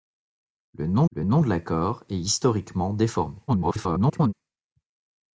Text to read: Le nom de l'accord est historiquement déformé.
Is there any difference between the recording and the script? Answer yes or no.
yes